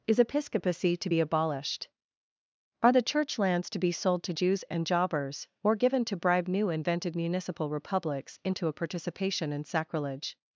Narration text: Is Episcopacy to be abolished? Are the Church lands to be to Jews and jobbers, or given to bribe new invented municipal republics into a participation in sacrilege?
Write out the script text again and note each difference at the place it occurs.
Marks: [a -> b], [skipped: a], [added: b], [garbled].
Is Episcopacy to be abolished? Are the Church lands to be [added: sold] to Jews and jobbers, or given to bribe new invented municipal republics into a participation in sacrilege?